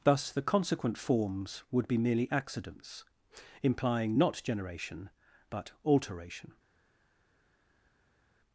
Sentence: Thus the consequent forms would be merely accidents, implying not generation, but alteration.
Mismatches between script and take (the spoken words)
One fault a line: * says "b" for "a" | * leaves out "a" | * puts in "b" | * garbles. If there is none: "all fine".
all fine